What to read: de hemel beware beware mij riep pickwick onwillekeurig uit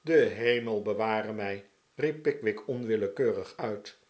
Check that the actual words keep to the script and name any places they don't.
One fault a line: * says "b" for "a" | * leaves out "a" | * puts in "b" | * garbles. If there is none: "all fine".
* leaves out "beware"